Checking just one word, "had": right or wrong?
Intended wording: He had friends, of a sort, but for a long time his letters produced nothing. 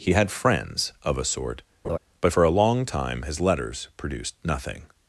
right